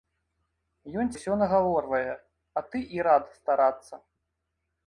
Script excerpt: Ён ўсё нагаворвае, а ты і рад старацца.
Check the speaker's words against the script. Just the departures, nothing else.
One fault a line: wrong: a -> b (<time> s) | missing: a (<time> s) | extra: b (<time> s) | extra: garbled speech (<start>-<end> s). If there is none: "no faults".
no faults